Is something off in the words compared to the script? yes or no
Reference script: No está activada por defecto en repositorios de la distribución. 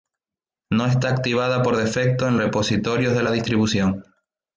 no